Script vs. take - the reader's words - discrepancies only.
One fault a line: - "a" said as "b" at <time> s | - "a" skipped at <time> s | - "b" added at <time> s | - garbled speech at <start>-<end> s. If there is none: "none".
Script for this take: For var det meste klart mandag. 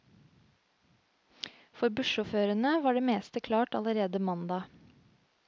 - "bussjåførene" added at 2.0 s
- "allerede" added at 3.8 s